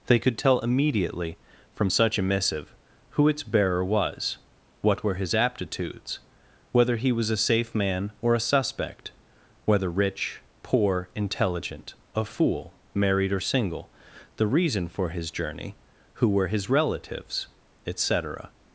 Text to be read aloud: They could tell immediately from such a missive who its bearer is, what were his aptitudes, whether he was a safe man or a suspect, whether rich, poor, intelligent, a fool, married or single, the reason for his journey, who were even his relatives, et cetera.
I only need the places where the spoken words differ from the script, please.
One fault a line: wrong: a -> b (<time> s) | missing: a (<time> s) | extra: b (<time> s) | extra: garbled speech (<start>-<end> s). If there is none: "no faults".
wrong: is -> was (3.8 s)
missing: even (16.5 s)